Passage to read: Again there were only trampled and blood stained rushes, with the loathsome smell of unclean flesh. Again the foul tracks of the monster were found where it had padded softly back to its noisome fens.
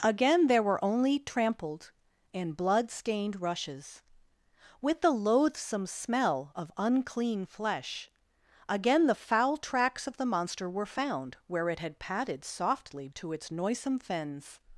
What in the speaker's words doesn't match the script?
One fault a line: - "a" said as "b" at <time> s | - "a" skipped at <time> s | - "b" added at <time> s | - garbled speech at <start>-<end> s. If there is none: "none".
- "back" skipped at 13.1 s